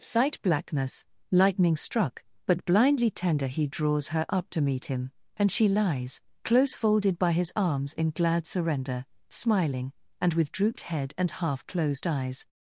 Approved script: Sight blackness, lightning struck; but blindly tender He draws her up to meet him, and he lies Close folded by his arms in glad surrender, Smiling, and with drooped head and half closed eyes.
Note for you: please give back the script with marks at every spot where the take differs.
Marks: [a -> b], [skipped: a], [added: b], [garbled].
Sight blackness, lightning struck; but blindly tender He draws her up to meet him, and [he -> she] lies Close folded by his arms in glad surrender, Smiling, and with drooped head and half closed eyes.